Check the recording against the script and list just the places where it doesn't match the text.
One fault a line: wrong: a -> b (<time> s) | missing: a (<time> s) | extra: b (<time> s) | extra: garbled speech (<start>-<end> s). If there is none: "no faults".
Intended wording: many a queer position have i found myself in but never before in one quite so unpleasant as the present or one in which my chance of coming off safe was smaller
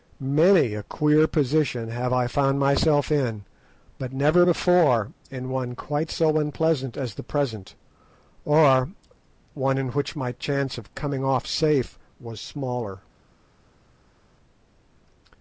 no faults